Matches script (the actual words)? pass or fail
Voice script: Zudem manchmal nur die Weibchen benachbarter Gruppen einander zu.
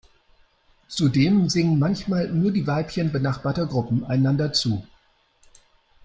fail